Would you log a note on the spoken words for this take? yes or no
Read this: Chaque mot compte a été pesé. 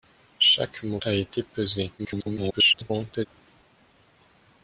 yes